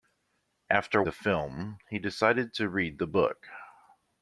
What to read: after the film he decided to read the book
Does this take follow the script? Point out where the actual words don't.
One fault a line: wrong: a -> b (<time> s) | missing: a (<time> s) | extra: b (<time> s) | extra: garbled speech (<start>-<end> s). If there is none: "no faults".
no faults